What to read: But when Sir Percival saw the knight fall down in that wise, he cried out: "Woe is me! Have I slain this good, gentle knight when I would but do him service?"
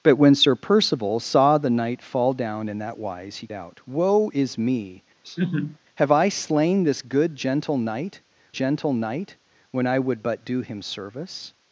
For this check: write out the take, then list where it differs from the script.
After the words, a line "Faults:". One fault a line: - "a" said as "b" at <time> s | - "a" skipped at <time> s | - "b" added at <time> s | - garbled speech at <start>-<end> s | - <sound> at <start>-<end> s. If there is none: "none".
But when Sir Percival saw the knight fall down in that wise, he out: "Woe is me! Have I slain this good, gentle knight gentle knight when I would but do him service?"
Faults:
- "cried" skipped at 3.5 s
- laugh at 5.2-5.8 s
- "gentle knight" added at 8.5 s